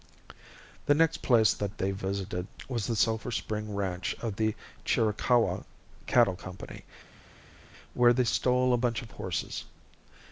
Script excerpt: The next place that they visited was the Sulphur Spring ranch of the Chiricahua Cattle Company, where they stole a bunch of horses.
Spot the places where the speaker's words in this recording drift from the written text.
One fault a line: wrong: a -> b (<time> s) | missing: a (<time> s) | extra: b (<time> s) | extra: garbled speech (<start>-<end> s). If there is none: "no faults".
no faults